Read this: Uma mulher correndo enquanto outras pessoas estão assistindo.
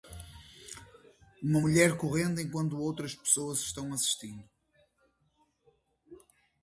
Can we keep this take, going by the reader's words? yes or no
yes